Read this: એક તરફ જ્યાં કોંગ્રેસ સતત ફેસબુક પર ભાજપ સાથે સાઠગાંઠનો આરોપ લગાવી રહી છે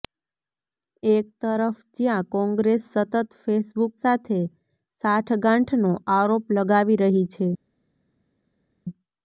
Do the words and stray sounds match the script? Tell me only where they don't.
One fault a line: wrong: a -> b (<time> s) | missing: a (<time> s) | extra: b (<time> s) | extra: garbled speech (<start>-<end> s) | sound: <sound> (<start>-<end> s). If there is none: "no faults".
missing: પર ભાજપ (3.9 s)